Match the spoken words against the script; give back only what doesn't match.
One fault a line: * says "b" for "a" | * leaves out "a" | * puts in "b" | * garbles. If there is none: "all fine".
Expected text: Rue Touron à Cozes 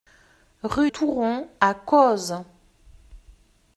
all fine